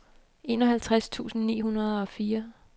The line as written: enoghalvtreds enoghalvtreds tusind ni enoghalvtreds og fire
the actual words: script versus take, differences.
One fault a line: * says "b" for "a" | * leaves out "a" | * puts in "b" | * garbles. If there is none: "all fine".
* leaves out "enoghalvtreds"
* says "hundrede" for "enoghalvtreds"